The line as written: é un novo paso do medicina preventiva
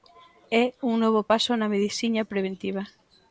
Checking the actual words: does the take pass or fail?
fail